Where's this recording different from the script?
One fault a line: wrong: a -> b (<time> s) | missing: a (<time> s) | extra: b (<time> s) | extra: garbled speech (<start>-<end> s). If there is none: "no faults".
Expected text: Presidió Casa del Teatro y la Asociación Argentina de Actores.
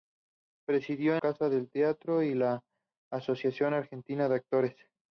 no faults